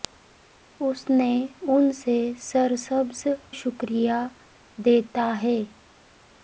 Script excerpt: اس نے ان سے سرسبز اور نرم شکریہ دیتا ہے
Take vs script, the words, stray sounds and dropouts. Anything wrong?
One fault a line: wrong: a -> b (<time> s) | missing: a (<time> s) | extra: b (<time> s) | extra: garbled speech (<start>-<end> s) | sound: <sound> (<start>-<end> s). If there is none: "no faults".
missing: اور نرم (3.2 s)